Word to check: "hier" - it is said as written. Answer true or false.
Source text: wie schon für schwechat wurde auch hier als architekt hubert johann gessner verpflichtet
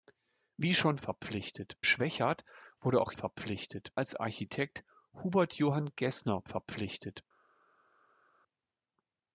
false